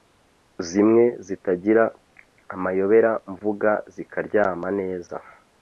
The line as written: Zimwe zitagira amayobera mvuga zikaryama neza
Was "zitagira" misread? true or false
false